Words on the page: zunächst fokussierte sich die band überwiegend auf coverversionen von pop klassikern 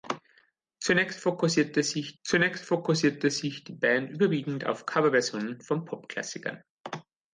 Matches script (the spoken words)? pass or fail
fail